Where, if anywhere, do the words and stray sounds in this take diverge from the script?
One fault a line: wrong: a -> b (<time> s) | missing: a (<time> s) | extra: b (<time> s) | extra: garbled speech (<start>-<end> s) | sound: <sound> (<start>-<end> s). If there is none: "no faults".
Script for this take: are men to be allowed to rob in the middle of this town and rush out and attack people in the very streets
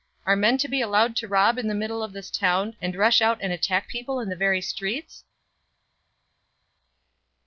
no faults